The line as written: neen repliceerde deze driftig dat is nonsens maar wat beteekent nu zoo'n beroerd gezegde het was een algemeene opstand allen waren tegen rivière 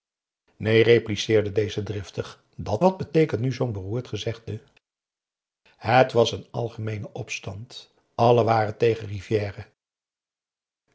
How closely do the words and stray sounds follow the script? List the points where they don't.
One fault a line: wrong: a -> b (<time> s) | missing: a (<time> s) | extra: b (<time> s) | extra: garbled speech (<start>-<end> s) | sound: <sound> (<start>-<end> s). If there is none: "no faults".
missing: is nonsens maar (2.8 s)